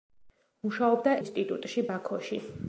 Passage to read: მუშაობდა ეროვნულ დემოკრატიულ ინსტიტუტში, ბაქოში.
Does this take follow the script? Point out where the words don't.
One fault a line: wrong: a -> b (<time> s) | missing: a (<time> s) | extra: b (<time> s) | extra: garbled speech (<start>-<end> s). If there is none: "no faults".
missing: ეროვნულ დემოკრატიულ (1.1 s)